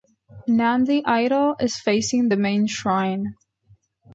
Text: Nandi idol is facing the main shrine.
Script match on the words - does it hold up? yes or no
yes